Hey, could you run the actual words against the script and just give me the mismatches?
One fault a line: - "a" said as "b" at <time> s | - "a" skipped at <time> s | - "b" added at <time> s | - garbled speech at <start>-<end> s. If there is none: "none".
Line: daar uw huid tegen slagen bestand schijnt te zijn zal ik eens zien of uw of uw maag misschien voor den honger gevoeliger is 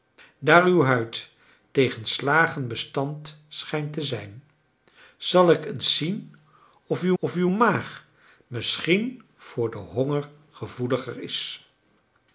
none